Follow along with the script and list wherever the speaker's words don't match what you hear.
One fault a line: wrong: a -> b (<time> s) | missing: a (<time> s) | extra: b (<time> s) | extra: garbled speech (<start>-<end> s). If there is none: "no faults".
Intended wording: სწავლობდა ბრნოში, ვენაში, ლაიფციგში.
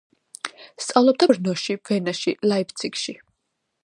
no faults